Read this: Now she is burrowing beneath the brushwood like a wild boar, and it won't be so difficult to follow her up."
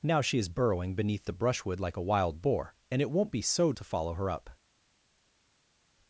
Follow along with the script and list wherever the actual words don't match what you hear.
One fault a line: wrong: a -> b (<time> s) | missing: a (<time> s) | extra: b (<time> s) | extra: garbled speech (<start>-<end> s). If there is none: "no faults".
missing: difficult (3.7 s)